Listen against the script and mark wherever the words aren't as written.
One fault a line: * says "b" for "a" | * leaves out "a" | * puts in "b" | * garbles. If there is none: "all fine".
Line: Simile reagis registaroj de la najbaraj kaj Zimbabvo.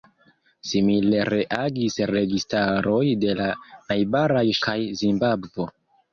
all fine